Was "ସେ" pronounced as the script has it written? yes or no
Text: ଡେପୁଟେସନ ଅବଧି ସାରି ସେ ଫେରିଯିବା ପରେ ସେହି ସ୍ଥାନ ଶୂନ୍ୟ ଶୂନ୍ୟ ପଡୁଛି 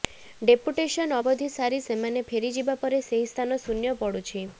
no